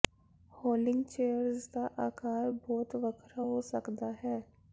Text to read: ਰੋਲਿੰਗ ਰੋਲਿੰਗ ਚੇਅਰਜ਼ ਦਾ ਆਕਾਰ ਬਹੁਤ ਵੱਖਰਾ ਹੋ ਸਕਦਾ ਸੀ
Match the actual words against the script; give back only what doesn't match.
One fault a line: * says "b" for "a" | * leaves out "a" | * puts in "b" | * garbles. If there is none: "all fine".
* leaves out "ਰੋਲਿੰਗ"
* says "ਹੈ" for "ਸੀ"